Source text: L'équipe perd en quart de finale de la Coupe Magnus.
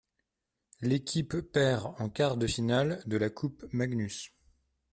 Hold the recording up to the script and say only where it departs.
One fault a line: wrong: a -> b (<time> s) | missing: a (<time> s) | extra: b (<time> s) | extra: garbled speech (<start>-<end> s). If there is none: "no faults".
no faults